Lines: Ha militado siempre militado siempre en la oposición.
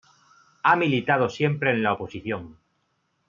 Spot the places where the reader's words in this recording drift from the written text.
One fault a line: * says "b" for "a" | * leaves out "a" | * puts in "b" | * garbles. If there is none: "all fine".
* leaves out "militado siempre"